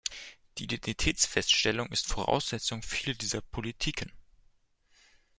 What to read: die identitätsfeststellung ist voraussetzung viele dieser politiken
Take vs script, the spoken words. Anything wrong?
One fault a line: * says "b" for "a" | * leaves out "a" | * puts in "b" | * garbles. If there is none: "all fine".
all fine